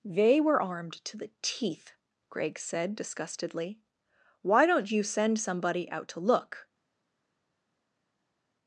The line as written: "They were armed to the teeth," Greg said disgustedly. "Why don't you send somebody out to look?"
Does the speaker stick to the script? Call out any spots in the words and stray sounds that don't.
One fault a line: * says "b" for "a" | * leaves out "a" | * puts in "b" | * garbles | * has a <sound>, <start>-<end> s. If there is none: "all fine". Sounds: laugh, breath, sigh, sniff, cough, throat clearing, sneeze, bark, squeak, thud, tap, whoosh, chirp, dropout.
all fine